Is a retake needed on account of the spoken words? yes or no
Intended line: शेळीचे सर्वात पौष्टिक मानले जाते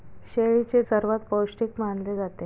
no